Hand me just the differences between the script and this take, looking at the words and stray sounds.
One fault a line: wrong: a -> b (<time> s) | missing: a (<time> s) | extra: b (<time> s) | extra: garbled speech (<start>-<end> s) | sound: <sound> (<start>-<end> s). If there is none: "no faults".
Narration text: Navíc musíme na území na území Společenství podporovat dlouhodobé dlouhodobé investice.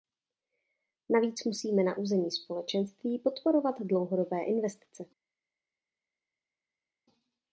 missing: na území (2.3 s)
missing: dlouhodobé (4.4 s)